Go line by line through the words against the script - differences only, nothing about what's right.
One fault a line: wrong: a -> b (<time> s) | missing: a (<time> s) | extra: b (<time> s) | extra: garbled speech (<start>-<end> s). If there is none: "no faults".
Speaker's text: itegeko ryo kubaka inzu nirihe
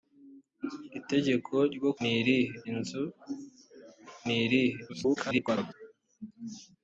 wrong: kubaka -> nirihe (2.0 s)
extra: garbled speech (4.9-5.7 s)